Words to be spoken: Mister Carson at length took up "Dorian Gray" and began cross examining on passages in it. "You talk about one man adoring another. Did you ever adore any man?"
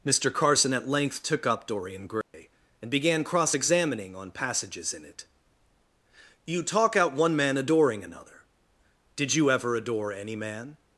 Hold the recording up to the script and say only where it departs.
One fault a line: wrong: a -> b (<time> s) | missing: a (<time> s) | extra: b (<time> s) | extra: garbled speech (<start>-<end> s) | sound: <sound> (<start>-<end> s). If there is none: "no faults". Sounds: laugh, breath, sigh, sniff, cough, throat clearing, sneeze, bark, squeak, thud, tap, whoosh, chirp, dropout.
sound: dropout (2.2-2.3 s)
wrong: about -> out (6.9 s)